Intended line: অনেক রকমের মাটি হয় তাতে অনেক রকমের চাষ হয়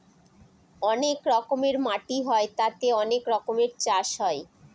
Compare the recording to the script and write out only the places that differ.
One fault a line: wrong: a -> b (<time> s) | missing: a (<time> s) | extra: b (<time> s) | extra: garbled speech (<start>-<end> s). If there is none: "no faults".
no faults